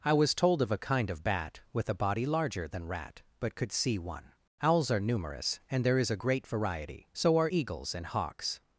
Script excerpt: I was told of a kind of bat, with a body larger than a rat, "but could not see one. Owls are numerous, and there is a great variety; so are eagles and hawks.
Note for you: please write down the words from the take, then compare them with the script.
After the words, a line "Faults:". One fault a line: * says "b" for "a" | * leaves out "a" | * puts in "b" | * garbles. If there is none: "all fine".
I was told of a kind of bat, with a body larger than rat, "but could see one. Owls are numerous, and there is a great variety; so are eagles and hawks.
Faults:
* leaves out "a"
* leaves out "not"